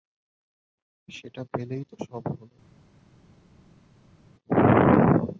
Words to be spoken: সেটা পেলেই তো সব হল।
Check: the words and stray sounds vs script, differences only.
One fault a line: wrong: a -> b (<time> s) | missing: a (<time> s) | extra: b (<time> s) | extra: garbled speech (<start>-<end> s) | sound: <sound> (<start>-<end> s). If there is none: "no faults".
no faults